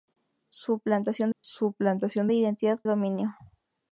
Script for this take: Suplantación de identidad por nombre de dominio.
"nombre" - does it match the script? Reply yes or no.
no